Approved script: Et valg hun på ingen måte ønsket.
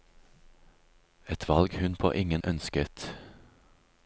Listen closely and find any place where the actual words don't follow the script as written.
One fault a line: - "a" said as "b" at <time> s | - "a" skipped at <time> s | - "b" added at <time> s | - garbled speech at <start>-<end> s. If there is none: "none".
- "måte" skipped at 2.4 s